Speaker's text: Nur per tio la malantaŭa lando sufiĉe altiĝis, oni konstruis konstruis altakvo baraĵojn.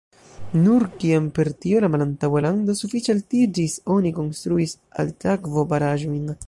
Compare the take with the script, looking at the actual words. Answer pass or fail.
fail